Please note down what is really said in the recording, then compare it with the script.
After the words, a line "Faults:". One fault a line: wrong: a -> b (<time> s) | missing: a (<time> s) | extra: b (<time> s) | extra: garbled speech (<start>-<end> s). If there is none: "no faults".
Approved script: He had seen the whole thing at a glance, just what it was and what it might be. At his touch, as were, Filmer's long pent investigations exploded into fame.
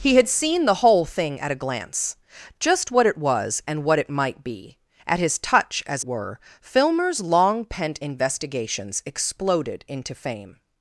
He had seen the whole thing at a glance, just what it was and what it might be. At his touch, as were, Filmer's long pent investigations exploded into fame.
Faults:
no faults